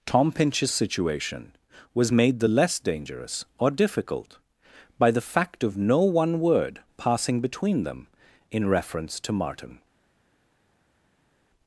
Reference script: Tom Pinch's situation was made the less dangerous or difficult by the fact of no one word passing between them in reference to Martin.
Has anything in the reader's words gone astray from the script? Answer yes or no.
no